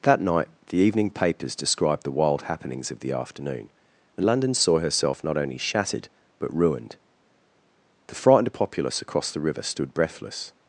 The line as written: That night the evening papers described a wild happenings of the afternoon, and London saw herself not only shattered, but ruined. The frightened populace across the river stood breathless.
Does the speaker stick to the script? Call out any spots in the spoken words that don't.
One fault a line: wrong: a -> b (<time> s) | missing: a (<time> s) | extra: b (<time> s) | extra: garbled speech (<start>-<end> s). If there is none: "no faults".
wrong: a -> the (2.0 s)